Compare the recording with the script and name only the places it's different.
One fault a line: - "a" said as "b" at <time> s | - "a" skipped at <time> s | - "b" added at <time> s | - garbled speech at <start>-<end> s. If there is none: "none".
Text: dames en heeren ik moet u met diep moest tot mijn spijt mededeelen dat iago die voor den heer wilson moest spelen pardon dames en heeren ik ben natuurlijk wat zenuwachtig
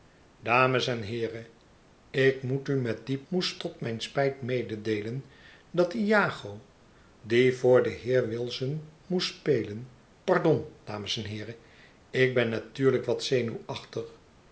none